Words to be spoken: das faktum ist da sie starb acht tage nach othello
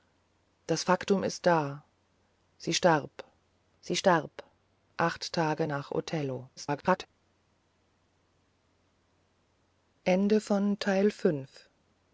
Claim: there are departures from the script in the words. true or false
true